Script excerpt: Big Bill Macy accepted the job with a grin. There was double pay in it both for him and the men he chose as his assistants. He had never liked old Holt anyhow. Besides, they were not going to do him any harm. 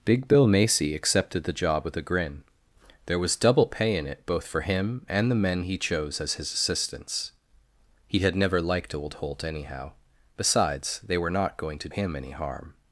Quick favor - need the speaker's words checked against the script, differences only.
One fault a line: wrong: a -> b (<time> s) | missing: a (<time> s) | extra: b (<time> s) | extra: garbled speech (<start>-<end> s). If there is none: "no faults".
missing: do (11.9 s)